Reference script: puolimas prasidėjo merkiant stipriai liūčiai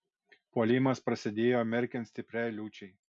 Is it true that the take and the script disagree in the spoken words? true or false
false